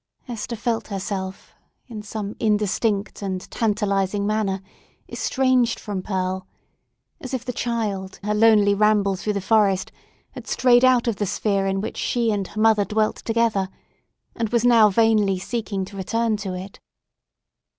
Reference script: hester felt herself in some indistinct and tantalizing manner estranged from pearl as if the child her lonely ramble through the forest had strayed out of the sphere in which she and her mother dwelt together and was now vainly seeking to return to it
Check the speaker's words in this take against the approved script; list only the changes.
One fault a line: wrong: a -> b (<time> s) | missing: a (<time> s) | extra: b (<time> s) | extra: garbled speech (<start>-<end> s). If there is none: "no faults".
no faults